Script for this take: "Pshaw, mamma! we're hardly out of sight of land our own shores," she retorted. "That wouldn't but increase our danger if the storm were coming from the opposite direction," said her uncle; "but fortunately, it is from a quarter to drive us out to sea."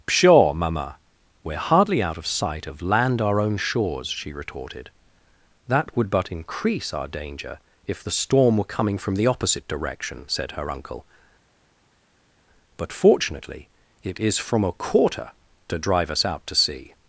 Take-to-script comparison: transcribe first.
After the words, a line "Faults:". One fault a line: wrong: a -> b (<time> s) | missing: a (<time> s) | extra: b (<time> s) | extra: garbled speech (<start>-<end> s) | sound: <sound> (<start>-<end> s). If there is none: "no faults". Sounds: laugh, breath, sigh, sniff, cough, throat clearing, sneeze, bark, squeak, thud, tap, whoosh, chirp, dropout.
"Pshaw, mamma! we're hardly out of sight of land our own shores," she retorted. "That would but increase our danger if the storm were coming from the opposite direction," said her uncle; "but fortunately, it is from a quarter to drive us out to sea."
Faults:
wrong: wouldn't -> would (6.0 s)